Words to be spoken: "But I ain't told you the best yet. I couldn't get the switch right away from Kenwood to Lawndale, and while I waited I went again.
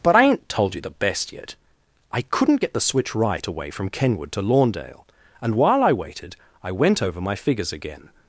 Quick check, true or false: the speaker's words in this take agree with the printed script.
false